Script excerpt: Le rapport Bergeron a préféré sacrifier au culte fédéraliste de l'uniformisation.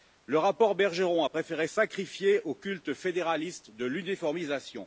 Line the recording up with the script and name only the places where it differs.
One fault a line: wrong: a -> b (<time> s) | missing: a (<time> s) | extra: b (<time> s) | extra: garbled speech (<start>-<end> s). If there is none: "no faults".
no faults